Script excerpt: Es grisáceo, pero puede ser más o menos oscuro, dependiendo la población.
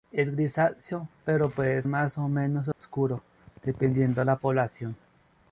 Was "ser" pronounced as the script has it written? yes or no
no